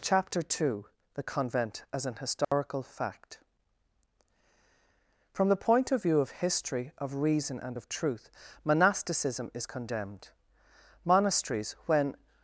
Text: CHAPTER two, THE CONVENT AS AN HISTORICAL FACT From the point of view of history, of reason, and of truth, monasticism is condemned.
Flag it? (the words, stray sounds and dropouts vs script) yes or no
yes